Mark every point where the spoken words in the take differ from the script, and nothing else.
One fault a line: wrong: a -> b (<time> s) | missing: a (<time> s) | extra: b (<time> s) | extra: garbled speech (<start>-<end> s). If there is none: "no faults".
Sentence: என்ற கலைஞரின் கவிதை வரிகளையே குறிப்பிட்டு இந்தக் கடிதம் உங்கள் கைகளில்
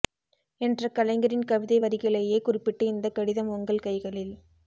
no faults